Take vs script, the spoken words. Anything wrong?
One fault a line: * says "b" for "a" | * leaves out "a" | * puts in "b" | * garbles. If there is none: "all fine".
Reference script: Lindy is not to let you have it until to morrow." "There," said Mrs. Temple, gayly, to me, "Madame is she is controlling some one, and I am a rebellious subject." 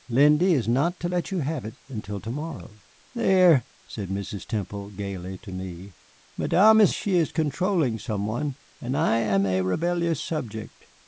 all fine